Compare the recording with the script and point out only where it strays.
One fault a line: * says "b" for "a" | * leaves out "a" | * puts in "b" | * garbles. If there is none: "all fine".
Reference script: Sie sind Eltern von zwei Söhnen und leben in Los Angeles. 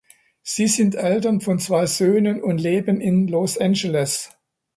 all fine